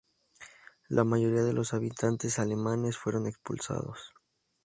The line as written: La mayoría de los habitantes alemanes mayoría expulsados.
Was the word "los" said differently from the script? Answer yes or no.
no